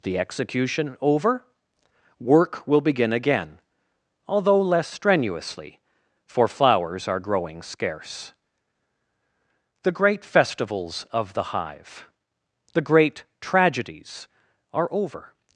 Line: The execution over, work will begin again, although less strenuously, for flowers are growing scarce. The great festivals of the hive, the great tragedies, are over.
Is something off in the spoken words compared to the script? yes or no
no